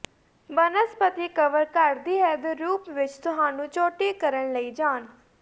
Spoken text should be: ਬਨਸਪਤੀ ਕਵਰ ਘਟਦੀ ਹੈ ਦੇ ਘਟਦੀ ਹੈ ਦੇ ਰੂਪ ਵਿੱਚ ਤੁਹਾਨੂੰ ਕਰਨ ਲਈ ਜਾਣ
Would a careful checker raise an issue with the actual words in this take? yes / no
yes